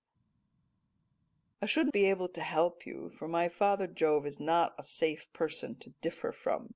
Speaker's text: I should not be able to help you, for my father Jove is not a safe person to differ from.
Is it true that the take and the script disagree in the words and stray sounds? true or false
true